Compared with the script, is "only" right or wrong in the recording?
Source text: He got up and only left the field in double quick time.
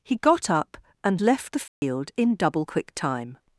wrong